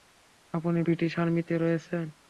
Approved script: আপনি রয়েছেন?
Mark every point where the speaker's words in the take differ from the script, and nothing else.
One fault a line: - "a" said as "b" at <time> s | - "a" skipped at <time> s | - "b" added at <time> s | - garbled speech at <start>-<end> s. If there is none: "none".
- "ব্রিটিশ আর্মিতে" added at 0.8 s